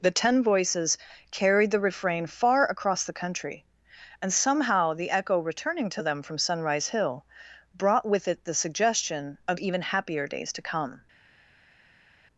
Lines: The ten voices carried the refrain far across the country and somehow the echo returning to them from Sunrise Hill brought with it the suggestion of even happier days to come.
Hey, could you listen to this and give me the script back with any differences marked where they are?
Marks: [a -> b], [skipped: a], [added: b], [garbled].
The ten voices carried the refrain far across the country and somehow the echo returning to them from Sunrise Hill brought with it the suggestion of even happier days to come.